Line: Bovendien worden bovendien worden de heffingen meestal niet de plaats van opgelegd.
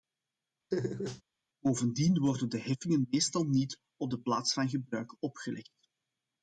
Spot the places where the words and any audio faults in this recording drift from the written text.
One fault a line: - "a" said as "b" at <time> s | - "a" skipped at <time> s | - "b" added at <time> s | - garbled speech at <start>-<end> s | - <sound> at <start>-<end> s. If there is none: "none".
- laugh at 0.7-1.2 s
- "bovendien worden" skipped at 2.5 s
- "op" added at 4.0 s
- "gebruik" added at 4.7 s